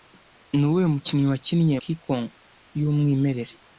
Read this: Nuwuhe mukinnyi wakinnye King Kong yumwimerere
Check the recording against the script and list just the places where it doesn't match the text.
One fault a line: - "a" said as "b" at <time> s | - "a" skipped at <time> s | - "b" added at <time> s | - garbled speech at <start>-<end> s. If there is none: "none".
none